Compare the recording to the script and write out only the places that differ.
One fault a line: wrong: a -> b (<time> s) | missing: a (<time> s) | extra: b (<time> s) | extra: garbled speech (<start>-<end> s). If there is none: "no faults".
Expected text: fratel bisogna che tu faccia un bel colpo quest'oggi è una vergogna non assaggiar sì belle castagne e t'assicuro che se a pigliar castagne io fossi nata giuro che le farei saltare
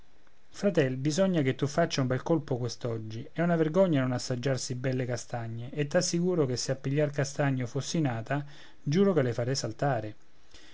no faults